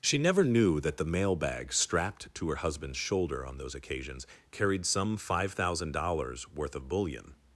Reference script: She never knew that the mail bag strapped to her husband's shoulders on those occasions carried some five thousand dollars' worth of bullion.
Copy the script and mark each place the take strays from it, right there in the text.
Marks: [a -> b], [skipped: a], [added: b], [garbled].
She never knew that the mail bag strapped to her husband's [shoulders -> shoulder] on those occasions carried some five thousand dollars' worth of bullion.